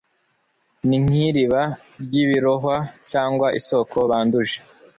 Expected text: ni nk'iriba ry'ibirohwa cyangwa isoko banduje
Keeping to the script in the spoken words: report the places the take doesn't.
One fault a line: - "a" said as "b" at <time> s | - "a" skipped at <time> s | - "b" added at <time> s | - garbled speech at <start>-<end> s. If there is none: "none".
none